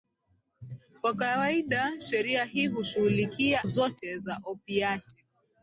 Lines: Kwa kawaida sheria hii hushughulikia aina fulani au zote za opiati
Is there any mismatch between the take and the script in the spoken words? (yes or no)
yes